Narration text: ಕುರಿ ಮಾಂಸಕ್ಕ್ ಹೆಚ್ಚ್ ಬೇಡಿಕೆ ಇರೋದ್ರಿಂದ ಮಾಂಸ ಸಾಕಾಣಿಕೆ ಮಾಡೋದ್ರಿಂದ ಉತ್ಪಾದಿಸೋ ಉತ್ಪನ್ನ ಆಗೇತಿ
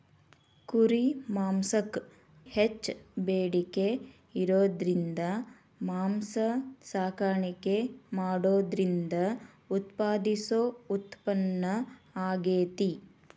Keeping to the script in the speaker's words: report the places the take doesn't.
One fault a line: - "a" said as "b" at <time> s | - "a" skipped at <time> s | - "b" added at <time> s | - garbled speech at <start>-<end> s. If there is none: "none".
none